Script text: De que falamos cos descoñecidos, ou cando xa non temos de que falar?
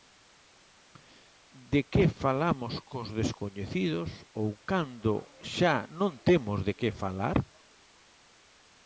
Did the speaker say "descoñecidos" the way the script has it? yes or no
yes